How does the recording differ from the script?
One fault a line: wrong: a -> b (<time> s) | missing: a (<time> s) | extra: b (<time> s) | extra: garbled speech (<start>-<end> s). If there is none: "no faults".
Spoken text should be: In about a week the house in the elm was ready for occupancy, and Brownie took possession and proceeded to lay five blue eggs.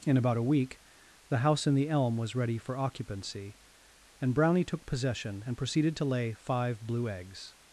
no faults